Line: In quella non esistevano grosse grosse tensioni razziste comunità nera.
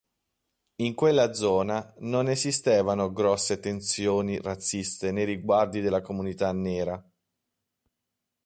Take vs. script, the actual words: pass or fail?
fail